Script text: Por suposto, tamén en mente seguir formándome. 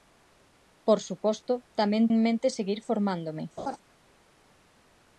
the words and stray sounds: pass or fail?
fail